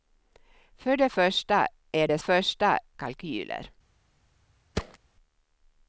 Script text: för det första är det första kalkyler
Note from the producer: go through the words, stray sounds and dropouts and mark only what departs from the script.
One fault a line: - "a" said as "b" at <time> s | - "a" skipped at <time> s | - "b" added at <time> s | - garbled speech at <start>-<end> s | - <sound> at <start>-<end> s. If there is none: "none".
- thud at 4.8-5.0 s